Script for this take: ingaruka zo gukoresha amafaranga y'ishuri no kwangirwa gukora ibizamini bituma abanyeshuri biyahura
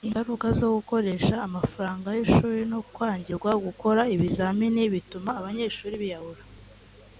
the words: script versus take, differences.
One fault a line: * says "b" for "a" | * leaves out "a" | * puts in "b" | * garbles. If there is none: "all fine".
all fine